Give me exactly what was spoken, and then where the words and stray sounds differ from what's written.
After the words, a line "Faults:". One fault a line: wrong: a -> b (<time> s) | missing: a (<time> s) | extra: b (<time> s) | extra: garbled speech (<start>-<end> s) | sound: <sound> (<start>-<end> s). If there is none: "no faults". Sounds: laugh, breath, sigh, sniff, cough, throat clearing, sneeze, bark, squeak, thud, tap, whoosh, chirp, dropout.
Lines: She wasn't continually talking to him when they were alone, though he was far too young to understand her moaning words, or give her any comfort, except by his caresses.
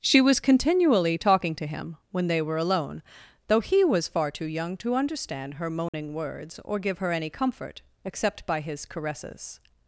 She was continually talking to him when they were alone, though he was far too young to understand her moaning words, or give her any comfort, except by his caresses.
Faults:
wrong: wasn't -> was (0.2 s)
sound: dropout (5.9-5.9 s)